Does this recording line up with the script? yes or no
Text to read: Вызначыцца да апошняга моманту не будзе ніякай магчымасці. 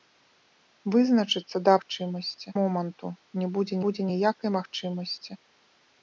no